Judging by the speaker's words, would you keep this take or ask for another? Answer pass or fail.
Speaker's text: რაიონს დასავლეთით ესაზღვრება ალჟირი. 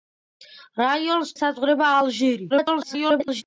fail